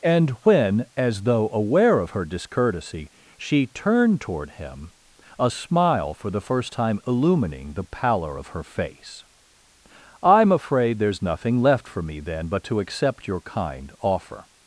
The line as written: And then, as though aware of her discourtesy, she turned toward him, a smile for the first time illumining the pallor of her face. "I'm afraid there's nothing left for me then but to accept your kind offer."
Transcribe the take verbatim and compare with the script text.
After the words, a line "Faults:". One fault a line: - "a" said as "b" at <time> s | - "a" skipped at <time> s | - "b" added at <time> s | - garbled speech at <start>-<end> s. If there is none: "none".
And when, as though aware of her discourtesy, she turned toward him, a smile for the first time illumining the pallor of her face. "I'm afraid there's nothing left for me then but to accept your kind offer."
Faults:
- "then" said as "when" at 0.4 s